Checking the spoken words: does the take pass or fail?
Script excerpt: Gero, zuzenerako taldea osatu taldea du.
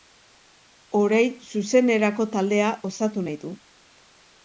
fail